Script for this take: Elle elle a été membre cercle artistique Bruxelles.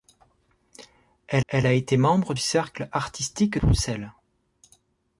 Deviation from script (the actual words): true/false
false